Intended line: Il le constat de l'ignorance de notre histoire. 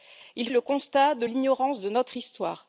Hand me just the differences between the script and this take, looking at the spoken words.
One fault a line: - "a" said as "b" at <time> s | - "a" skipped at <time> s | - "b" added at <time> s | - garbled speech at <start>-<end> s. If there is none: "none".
none